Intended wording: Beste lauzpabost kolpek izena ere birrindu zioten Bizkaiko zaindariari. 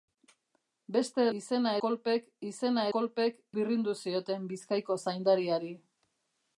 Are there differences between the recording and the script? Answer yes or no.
yes